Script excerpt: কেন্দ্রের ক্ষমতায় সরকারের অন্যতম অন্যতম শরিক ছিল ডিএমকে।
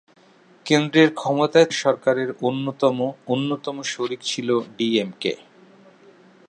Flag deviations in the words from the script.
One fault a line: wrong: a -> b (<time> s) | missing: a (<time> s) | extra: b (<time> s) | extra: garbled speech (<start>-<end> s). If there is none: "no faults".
no faults